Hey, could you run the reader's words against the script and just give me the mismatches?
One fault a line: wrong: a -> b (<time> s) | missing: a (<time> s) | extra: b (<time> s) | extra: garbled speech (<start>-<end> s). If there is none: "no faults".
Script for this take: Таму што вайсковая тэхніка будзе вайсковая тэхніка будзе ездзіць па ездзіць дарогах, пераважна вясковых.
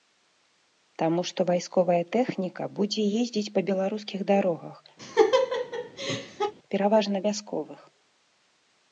missing: вайсковая тэхніка будзе (3.1 s)
wrong: ездзіць -> беларускіх (3.7 s)